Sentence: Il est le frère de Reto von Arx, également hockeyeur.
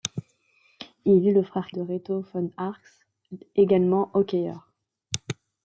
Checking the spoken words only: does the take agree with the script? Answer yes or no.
yes